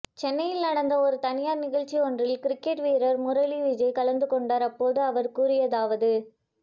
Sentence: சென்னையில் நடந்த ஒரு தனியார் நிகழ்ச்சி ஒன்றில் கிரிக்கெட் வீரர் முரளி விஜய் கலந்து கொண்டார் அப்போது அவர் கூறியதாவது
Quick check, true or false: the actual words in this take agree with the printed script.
true